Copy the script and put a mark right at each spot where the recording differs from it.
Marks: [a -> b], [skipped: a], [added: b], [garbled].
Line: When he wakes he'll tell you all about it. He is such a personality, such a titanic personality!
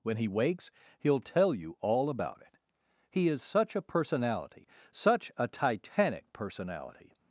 When he wakes he'll tell you all about it. He is such a personality, such a titanic personality!